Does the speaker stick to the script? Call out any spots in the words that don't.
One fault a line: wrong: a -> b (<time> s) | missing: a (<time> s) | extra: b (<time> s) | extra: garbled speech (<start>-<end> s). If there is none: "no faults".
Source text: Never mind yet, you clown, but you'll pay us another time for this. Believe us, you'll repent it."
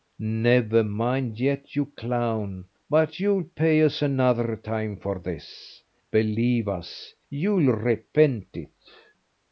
no faults